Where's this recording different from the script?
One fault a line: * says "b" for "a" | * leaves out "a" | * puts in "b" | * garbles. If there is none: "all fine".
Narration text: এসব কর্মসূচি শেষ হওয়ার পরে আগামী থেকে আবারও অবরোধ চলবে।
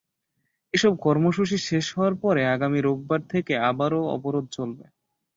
* puts in "রোববার"